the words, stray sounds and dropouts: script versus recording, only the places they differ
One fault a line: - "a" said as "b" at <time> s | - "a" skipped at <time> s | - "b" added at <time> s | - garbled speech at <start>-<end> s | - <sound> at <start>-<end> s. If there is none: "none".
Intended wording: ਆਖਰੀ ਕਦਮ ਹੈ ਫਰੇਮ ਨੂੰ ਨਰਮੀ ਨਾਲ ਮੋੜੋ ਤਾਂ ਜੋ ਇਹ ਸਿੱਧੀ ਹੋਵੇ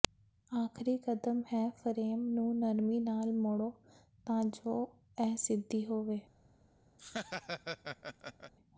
- laugh at 7.0-8.5 s